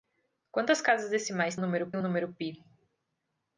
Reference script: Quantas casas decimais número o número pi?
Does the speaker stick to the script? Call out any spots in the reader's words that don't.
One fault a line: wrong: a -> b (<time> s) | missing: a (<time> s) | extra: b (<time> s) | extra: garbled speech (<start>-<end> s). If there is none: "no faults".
no faults